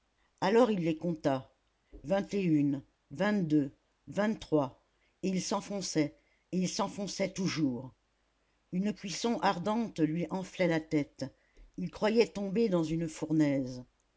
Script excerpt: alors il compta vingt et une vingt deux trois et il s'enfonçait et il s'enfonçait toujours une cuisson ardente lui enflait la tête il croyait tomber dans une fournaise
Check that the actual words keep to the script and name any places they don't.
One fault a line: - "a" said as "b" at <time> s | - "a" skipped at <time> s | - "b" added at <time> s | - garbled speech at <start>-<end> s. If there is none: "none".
- "les" added at 0.8 s
- "vingt" added at 4.1 s